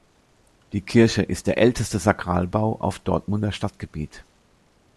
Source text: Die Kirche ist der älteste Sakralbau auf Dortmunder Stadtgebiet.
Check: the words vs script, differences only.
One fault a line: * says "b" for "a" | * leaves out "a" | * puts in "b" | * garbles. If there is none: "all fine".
all fine